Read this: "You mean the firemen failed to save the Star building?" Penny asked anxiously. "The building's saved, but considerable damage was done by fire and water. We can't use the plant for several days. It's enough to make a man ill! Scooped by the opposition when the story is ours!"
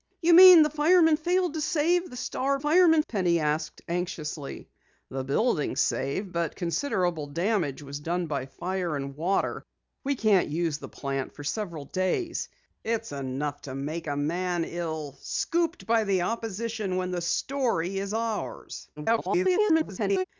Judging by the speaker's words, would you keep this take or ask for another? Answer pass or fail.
fail